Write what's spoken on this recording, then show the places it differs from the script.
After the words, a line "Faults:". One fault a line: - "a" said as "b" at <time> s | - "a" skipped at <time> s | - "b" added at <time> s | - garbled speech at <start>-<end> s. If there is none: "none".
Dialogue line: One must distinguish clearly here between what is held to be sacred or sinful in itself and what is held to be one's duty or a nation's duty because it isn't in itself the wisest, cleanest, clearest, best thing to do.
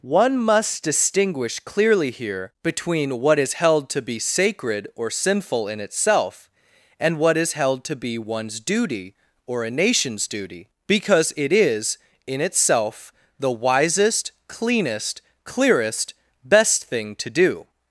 One must distinguish clearly here between what is held to be sacred or sinful in itself and what is held to be one's duty or a nation's duty because it is in itself the wisest, cleanest, clearest, best thing to do.
Faults:
- "isn't" said as "is" at 11.5 s